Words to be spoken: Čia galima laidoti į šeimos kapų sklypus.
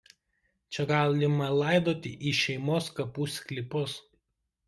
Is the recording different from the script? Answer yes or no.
no